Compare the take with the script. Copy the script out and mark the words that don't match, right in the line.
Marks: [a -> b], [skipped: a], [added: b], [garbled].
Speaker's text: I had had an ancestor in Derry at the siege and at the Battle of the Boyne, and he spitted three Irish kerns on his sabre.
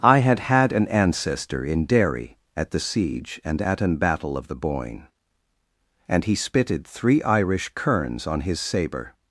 I had had an ancestor in Derry at the siege and at [the -> an] Battle of the Boyne, and he spitted three Irish kerns on his sabre.